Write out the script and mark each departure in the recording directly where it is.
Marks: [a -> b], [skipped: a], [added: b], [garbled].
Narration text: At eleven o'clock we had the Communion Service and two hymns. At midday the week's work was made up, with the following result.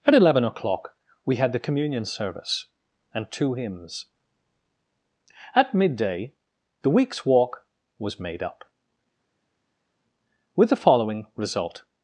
At eleven o'clock we had the Communion Service and two hymns. At midday the week's [work -> walk] was made up, with the following result.